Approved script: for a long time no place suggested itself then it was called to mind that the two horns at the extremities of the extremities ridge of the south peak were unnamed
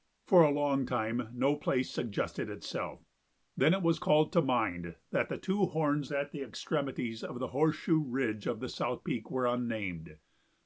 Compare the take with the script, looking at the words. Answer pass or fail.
fail